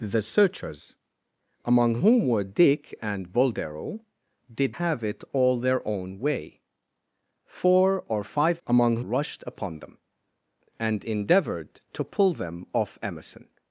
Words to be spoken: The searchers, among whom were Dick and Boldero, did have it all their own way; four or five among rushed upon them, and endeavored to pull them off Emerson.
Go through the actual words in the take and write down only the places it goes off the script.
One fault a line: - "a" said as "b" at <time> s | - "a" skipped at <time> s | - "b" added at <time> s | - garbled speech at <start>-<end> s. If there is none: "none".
none